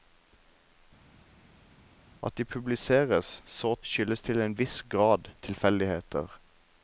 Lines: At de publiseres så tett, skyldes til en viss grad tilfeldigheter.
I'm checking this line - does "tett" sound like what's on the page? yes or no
no